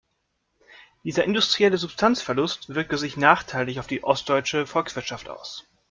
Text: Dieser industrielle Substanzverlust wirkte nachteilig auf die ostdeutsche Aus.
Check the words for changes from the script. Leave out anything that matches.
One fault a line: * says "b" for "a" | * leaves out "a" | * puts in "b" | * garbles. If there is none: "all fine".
* puts in "sich"
* puts in "Volkswirtschaft"